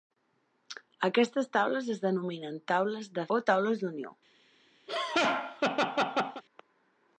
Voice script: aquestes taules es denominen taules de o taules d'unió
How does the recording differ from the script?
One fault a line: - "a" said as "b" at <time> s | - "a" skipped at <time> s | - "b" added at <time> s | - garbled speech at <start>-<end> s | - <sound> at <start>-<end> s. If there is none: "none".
- laugh at 4.9-6.4 s